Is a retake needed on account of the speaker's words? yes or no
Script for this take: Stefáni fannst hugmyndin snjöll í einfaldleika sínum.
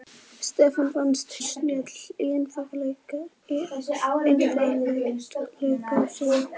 yes